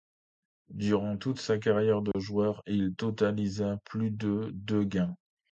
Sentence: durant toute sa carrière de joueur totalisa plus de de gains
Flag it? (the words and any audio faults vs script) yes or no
yes